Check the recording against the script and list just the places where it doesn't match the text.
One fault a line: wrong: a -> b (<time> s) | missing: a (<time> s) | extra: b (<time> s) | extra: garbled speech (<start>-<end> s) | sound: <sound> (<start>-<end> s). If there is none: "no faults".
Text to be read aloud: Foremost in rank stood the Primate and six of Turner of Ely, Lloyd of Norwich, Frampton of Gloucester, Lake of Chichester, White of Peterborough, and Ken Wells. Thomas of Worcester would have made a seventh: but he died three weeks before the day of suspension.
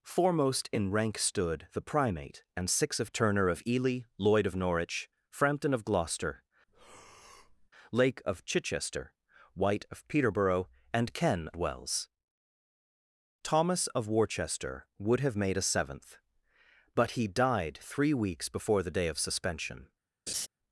sound: breath (6.7-7.7 s)
sound: laugh (20.3-20.5 s)